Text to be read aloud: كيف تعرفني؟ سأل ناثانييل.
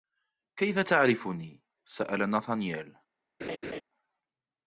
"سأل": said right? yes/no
yes